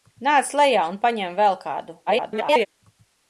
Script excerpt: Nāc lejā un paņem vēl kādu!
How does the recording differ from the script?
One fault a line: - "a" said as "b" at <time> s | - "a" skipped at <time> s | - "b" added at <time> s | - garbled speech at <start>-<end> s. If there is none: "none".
- garbled speech at 2.1-2.7 s